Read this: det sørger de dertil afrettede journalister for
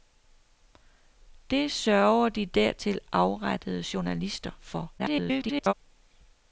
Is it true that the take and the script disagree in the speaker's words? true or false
true